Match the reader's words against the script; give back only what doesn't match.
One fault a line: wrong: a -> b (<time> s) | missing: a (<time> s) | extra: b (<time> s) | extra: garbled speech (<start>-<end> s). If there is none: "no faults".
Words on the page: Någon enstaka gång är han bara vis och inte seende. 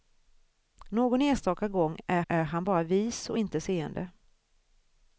extra: är (2.3 s)